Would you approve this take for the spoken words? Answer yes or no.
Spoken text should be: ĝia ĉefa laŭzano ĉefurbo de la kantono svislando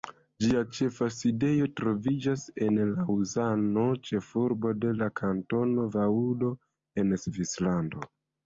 no